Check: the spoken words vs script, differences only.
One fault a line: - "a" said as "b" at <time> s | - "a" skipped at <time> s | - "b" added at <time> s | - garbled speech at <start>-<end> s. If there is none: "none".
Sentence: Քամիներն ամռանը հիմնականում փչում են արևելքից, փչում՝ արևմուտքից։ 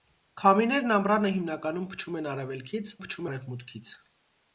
none